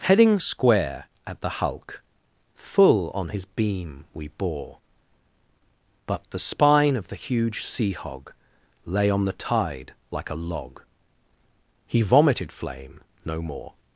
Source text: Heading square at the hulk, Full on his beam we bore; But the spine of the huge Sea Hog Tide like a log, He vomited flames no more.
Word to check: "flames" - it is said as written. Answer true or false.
false